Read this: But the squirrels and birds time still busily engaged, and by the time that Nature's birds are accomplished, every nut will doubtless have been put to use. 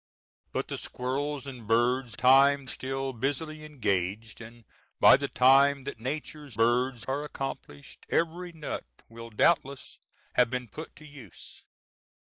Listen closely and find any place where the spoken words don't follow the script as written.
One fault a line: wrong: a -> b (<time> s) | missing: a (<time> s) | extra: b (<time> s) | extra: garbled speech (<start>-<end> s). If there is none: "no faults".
no faults